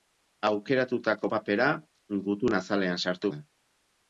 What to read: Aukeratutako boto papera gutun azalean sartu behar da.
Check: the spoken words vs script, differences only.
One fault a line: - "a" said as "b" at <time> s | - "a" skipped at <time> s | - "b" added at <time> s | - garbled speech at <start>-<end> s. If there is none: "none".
- "boto" skipped at 1.3 s
- "behar" skipped at 3.3 s